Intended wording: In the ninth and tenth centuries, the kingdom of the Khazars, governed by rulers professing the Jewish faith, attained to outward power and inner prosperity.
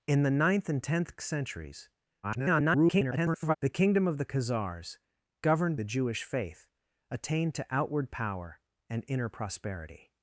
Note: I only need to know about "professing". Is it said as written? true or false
false